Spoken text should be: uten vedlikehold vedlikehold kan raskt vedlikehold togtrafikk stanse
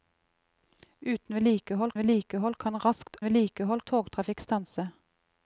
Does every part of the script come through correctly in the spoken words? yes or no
yes